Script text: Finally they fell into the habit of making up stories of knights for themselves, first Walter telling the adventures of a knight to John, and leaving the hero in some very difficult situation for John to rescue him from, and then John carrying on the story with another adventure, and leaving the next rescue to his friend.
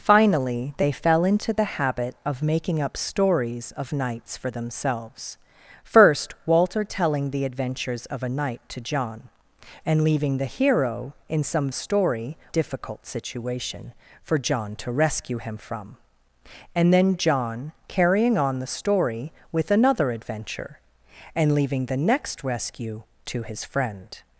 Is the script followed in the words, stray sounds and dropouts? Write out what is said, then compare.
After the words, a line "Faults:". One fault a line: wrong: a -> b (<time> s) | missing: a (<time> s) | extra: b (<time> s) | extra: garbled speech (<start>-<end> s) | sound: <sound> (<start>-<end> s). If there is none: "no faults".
Finally they fell into the habit of making up stories of knights for themselves, first Walter telling the adventures of a knight to John, and leaving the hero in some story difficult situation for John to rescue him from, and then John carrying on the story with another adventure, and leaving the next rescue to his friend.
Faults:
wrong: very -> story (11.7 s)